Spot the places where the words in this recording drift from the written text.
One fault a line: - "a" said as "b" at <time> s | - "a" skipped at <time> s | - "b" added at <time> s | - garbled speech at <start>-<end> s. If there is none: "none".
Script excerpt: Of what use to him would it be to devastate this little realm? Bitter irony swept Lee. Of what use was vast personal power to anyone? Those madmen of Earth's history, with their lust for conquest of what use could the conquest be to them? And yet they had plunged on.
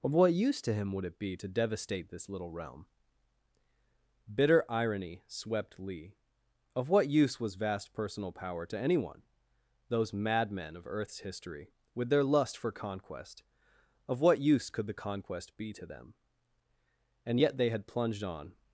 none